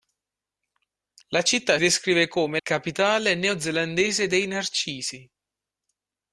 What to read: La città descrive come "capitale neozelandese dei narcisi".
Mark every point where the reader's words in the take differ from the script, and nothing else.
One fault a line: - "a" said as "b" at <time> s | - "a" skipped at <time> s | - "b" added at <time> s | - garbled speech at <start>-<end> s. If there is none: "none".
none